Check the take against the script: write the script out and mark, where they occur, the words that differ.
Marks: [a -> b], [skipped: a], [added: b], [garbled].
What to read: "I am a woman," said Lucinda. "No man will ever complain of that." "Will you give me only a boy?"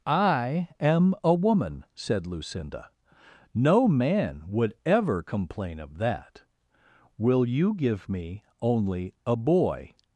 "I am a woman," said Lucinda. "No man [will -> would] ever complain of that." "Will you give me only a boy?"